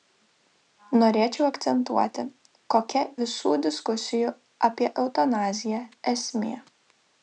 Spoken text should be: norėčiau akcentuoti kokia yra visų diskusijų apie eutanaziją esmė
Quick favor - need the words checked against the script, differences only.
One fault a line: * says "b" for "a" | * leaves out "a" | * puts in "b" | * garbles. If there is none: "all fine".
* leaves out "yra"